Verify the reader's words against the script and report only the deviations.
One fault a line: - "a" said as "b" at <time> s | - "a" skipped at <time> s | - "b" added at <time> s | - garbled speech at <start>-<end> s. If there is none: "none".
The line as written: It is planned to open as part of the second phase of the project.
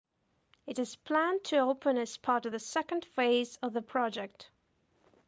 none